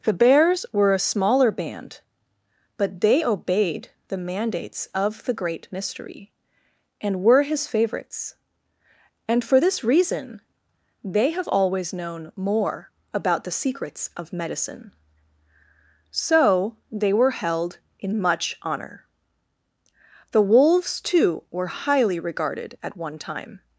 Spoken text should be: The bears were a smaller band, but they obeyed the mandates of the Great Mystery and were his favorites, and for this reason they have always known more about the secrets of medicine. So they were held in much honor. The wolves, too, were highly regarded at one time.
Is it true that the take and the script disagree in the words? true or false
false